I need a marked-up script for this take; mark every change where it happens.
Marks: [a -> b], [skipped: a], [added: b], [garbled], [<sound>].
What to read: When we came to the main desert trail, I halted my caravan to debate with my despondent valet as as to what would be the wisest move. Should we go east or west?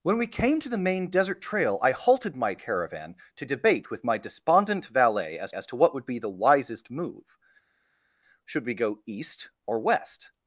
When we came to the main desert trail, I halted my caravan to debate with my despondent valet as as to what would be the wisest move. Should we go east or west?